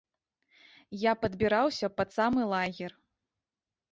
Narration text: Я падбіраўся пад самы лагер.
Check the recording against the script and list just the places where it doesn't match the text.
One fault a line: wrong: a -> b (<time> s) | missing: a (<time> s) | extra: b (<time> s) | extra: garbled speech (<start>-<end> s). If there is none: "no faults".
no faults